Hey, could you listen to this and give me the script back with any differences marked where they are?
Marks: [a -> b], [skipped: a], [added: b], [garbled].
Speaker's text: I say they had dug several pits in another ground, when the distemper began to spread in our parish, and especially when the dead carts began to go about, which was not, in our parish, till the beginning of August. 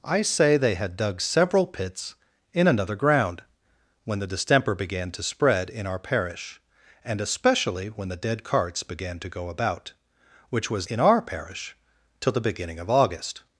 I say they had dug several pits in another ground, when the distemper began to spread in our parish, and especially when the dead carts began to go about, which was [skipped: not,] in our parish, till the beginning of August.